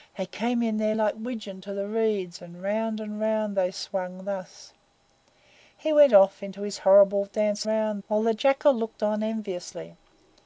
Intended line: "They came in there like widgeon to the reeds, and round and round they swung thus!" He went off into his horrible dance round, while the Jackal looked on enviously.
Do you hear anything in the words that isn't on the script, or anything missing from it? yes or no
no